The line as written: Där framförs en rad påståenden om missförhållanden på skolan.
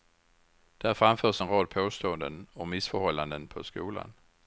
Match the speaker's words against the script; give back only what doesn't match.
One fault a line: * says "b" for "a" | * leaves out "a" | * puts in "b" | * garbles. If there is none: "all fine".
all fine